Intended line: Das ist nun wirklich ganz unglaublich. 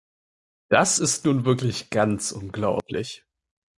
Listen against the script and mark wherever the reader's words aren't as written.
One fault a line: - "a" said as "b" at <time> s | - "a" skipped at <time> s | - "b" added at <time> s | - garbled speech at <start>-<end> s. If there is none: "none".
none